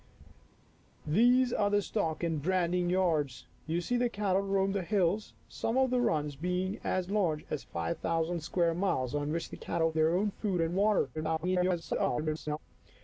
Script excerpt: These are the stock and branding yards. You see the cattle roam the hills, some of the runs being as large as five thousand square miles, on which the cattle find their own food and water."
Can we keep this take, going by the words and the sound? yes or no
no